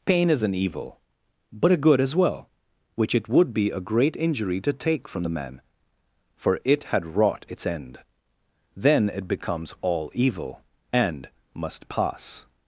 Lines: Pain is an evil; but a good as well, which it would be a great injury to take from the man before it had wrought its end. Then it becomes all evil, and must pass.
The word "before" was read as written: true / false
false